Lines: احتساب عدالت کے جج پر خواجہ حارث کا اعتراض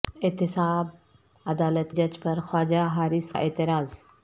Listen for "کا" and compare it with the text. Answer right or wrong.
wrong